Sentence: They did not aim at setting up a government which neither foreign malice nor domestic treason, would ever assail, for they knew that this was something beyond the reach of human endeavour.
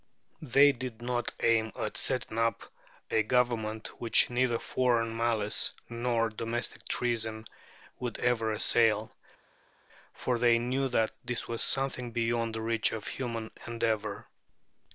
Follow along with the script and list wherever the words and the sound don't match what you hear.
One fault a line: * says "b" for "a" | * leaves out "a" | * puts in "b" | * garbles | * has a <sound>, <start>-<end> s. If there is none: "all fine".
all fine